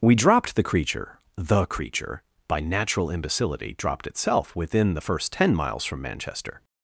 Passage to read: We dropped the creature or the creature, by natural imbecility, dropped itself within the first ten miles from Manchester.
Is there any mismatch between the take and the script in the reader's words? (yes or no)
yes